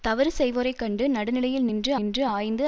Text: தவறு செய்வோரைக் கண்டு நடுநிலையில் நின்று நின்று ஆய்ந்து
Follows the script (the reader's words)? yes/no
yes